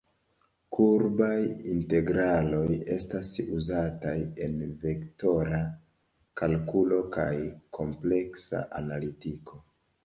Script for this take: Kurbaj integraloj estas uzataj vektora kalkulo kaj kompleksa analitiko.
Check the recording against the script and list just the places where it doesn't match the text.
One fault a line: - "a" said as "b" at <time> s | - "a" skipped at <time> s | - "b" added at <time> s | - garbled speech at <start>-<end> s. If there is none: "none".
- "en" added at 4.5 s